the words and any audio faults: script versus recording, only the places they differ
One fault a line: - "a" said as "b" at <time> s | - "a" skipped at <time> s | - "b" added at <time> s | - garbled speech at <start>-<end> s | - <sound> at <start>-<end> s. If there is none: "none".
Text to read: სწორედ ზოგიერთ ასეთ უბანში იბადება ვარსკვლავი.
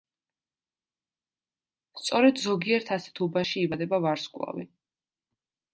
none